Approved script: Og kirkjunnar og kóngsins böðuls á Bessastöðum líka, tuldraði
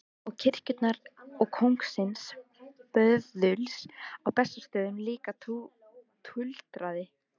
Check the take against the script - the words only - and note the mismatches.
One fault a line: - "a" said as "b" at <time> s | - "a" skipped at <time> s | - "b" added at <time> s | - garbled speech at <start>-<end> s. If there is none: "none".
none